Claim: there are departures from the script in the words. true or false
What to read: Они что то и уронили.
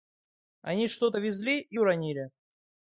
true